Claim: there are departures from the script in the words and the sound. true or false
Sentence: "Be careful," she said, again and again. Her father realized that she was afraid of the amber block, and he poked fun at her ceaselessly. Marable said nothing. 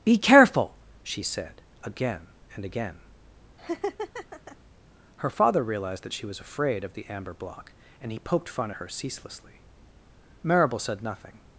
true